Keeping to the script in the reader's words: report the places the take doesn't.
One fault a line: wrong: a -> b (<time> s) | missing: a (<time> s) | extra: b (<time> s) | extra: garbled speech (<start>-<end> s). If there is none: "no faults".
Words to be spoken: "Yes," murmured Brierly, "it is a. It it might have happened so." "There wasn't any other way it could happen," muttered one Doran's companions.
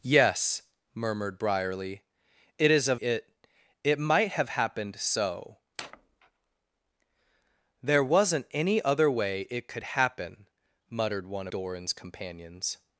no faults